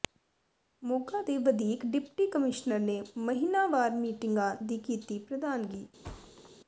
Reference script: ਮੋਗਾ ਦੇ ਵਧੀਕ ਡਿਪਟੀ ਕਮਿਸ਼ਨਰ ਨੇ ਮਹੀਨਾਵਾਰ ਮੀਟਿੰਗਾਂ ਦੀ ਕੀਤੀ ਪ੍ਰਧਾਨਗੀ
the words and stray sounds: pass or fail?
fail